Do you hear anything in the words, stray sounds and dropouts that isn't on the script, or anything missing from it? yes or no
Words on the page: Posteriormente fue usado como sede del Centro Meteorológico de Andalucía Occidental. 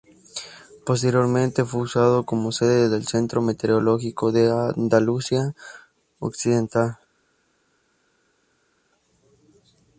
no